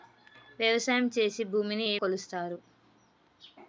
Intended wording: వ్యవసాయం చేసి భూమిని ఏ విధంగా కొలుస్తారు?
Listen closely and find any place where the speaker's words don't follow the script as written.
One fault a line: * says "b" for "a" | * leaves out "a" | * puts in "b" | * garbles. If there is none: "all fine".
* leaves out "విధంగా"